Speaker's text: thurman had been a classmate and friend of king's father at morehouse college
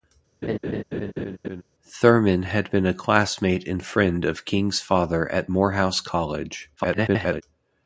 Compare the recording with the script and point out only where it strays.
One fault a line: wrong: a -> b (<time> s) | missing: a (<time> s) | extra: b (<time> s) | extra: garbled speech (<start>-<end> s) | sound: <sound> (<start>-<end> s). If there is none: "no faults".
sound: laugh (0.4-1.6 s)
extra: garbled speech (6.8-7.4 s)